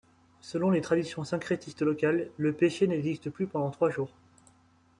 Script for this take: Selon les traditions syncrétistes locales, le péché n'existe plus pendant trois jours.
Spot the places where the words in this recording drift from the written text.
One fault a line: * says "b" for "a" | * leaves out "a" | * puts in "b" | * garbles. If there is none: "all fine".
all fine